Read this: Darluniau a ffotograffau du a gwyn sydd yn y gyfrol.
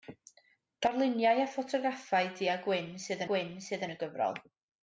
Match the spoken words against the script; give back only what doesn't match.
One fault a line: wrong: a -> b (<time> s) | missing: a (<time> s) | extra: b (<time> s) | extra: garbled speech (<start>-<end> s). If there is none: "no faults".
extra: gwyn sydd (3.3 s)